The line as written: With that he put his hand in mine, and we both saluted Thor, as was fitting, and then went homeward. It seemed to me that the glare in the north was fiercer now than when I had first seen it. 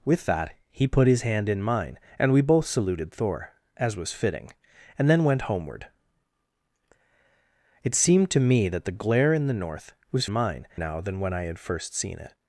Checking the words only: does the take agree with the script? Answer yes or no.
no